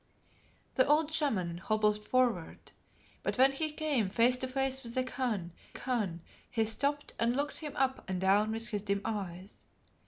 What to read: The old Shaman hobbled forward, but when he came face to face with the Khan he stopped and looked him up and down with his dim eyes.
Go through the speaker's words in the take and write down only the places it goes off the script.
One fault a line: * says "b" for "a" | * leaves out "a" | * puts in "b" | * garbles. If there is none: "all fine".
* puts in "Khan"